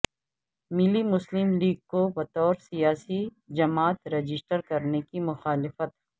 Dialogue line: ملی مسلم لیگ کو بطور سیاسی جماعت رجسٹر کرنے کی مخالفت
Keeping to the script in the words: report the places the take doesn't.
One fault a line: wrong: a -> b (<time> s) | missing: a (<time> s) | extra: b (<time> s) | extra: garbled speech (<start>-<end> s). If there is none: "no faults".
no faults